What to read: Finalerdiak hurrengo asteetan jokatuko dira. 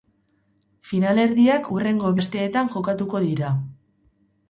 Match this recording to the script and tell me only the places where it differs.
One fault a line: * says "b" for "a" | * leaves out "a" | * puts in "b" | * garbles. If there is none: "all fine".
all fine